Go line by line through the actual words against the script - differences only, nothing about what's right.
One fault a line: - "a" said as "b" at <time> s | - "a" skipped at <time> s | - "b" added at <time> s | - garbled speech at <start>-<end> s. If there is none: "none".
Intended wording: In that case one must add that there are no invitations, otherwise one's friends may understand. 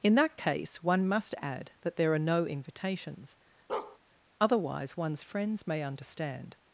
none